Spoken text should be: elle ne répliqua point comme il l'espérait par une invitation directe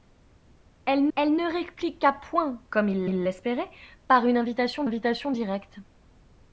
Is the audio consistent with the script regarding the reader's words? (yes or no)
no